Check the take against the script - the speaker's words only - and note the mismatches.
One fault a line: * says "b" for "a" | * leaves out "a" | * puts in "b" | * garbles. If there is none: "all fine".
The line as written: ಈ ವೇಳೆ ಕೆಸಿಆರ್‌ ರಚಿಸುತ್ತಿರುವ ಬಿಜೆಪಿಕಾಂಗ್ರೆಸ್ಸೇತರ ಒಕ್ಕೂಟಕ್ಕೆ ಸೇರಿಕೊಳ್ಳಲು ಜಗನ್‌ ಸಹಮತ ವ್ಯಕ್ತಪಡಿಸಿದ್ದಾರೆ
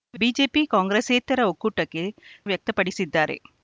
* leaves out "ವೇಳೆ ಕೆಸಿಆರ್ ರಚಿಸುತ್ತಿರುವ"
* leaves out "ಸೇರಿಕೊಳ್ಳಲು ಜಗನ್ ಸಹಮತ"